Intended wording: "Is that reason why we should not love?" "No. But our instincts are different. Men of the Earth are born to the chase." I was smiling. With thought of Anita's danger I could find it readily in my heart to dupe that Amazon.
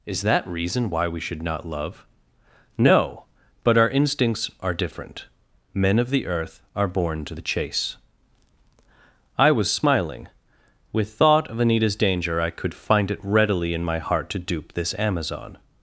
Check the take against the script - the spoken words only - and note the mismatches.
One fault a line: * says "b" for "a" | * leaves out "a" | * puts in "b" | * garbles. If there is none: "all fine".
* says "this" for "that"